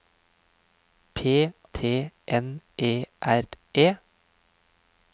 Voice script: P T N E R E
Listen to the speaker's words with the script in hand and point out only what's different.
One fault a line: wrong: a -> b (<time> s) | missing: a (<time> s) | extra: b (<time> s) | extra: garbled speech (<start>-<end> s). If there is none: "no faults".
no faults